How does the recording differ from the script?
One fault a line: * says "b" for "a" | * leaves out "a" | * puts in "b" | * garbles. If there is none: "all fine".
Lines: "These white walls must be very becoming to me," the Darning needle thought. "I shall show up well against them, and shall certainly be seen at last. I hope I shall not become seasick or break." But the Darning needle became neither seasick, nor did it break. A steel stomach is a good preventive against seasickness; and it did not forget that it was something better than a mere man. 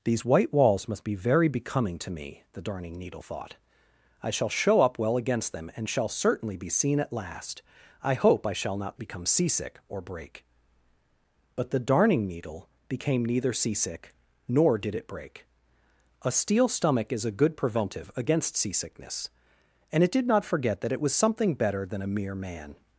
all fine